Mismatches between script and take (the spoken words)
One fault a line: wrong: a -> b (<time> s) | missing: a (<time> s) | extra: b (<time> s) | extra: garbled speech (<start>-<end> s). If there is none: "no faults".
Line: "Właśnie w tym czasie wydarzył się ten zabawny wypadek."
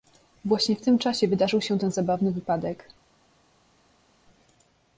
no faults